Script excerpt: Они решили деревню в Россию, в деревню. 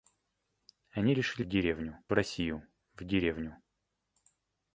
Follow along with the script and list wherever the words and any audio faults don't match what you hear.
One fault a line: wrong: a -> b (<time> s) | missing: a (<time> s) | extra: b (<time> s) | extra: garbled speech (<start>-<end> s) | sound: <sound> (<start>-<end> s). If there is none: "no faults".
no faults